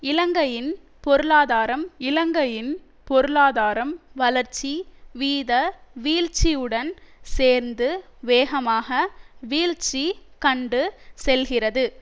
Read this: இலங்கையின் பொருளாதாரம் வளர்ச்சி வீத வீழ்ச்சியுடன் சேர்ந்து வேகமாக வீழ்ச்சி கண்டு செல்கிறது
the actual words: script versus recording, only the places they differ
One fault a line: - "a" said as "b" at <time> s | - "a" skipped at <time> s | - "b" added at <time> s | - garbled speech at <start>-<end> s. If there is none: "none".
- "இலங்கையின் பொருளாதாரம்" added at 2.0 s